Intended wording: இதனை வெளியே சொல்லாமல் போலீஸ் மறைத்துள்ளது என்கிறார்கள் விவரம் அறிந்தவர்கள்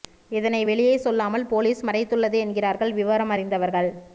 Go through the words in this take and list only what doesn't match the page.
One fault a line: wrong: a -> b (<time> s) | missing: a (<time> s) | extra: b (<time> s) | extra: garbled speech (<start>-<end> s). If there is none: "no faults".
no faults